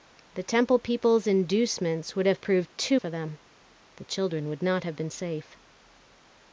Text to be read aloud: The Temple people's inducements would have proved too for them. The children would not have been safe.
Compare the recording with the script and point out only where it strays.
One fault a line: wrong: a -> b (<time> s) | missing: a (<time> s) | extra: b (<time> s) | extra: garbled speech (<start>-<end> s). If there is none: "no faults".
no faults